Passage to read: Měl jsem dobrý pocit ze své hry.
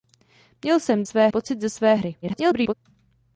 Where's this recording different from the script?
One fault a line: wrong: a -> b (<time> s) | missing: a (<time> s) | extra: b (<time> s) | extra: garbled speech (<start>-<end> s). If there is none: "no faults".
wrong: dobrý -> své (1.0 s)
extra: garbled speech (2.2-2.7 s)